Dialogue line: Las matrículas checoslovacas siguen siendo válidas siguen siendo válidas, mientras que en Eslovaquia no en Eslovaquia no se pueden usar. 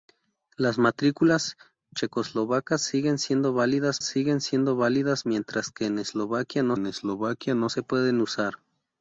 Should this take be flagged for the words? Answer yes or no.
no